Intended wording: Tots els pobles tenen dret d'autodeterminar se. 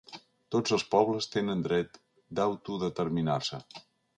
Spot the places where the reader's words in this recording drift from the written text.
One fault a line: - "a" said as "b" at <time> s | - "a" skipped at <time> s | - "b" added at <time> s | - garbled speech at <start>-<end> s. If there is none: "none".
none